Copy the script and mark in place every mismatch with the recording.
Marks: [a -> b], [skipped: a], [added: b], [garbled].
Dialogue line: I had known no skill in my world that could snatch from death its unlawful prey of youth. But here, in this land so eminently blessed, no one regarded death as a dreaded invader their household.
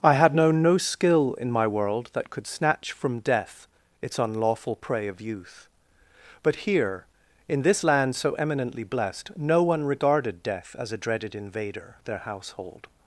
I had known no skill in my world that could snatch from death its unlawful prey of youth. But here, in this land so eminently blessed, no one regarded death as a dreaded invader their household.